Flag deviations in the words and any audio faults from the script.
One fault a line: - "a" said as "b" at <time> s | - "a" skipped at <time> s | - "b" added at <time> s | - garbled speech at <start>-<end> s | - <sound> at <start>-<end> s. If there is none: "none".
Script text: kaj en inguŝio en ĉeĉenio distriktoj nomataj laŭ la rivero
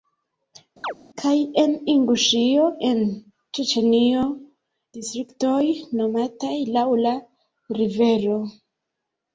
- chirp at 0.8-0.9 s